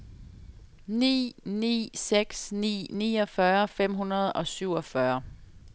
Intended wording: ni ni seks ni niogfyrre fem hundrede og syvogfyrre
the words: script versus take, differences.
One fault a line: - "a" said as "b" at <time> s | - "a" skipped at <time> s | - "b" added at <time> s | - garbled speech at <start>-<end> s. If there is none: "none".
none